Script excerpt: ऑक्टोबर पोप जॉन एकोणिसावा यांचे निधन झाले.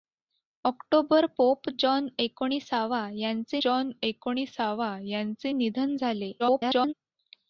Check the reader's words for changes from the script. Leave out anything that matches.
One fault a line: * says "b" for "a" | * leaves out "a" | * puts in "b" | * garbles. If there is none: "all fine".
* puts in "जॉन एकोणिसावा यांचे"
* garbles